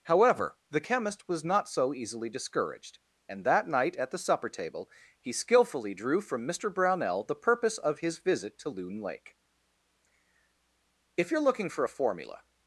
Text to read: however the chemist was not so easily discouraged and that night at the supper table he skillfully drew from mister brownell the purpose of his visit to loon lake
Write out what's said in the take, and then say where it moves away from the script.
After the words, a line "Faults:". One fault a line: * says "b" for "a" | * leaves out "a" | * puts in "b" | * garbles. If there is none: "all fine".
however the chemist was not so easily discouraged and that night at the supper table he skillfully drew from mister brownell the purpose of his visit to loon lake if you're looking for a formula
Faults:
* puts in "if you're looking for a formula"